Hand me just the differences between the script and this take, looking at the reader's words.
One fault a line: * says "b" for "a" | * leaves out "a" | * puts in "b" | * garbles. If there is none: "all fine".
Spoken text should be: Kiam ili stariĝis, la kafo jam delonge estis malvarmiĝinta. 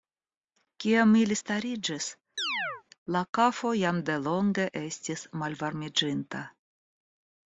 all fine